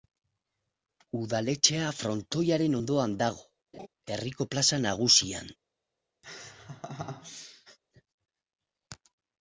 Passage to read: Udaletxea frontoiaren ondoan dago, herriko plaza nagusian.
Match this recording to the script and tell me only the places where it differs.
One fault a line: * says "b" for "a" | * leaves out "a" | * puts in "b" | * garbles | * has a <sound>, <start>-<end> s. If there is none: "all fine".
* has a laugh, 3.7-3.9 s
* has a laugh, 6.2-7.8 s